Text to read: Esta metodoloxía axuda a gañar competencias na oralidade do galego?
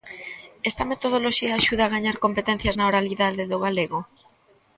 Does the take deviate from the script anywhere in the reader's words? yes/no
no